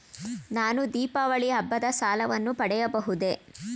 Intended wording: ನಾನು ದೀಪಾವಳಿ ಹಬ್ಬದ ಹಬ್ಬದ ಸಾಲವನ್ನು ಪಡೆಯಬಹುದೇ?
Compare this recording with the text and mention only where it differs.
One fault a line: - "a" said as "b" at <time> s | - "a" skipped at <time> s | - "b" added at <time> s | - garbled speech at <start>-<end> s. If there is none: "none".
- "ಹಬ್ಬದ" skipped at 1.8 s